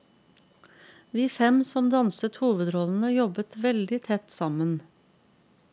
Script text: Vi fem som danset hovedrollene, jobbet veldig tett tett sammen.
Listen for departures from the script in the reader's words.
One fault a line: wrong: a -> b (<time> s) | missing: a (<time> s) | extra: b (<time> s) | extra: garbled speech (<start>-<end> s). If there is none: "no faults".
missing: tett (4.3 s)